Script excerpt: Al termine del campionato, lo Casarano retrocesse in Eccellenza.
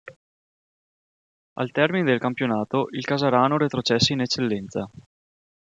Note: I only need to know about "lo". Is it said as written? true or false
false